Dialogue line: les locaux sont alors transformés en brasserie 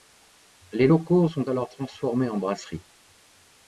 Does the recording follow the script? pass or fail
pass